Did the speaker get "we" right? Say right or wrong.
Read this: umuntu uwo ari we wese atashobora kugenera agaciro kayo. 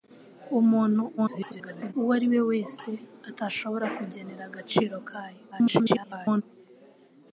right